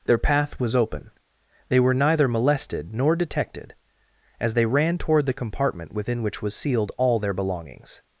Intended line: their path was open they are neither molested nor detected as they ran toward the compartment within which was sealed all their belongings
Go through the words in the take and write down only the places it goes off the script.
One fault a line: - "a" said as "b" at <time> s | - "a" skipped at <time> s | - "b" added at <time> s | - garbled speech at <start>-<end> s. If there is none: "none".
- "are" said as "were" at 1.8 s